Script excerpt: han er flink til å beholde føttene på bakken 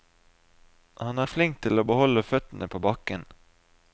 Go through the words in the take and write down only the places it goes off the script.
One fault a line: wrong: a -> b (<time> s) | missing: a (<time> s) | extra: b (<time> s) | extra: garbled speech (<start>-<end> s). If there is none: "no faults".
no faults